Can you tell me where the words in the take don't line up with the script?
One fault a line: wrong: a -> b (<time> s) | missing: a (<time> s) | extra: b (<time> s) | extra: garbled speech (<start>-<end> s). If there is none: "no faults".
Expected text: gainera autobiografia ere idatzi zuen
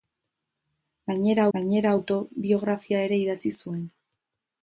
extra: gainera (1.6 s)